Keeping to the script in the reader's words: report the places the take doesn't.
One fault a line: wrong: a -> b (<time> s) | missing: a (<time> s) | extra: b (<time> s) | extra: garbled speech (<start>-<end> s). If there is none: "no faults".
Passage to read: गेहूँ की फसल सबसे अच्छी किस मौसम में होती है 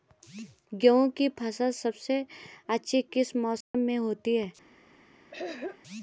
no faults